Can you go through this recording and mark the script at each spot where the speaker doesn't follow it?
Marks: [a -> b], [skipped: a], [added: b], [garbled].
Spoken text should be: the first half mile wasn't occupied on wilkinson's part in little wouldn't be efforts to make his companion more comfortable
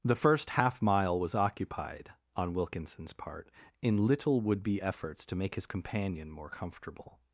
the first half mile [wasn't -> was] occupied on wilkinson's part in little [wouldn't -> would] be efforts to make his companion more comfortable